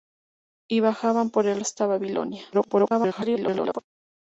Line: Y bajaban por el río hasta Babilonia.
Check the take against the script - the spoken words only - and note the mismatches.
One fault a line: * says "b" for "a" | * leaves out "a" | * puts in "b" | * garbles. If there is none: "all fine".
* leaves out "río"
* garbles